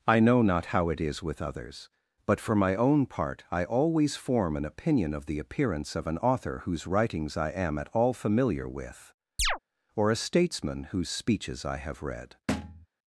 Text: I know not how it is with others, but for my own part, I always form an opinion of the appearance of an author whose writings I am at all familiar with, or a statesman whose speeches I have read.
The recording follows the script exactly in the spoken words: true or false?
true